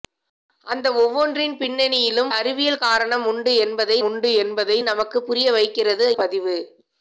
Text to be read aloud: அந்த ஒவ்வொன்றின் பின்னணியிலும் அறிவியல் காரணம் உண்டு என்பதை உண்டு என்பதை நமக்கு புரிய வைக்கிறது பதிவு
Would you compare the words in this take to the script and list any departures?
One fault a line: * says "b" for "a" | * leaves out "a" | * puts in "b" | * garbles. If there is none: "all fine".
all fine